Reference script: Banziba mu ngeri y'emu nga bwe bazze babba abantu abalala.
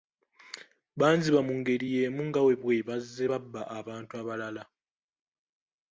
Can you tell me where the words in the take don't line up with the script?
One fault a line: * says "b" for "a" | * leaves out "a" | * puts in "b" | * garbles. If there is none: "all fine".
all fine